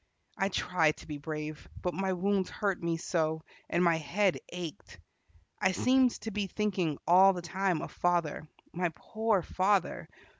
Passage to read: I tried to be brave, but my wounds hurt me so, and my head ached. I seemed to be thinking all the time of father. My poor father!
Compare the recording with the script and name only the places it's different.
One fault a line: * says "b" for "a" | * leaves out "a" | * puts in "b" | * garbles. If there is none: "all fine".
all fine